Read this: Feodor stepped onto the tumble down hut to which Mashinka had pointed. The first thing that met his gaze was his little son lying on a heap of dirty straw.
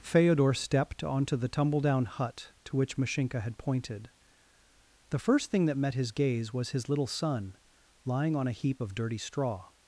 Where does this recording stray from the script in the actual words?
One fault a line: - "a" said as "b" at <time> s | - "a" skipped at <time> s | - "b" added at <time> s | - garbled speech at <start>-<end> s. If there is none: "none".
none